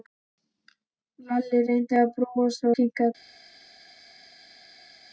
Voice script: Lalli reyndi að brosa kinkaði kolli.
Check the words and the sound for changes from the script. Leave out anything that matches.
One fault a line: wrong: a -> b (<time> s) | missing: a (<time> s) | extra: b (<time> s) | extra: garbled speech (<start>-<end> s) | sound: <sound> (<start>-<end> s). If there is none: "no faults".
no faults